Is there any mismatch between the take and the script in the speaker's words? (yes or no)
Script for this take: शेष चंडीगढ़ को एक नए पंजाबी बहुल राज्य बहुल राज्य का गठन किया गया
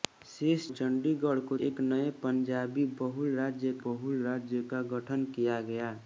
no